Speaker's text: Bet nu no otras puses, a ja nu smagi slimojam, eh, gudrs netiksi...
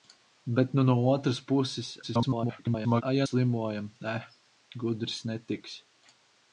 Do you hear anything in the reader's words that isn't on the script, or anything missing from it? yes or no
yes